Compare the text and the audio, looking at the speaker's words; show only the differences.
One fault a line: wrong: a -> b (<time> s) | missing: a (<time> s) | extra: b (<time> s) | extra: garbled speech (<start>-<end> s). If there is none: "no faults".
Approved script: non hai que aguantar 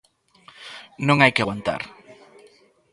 no faults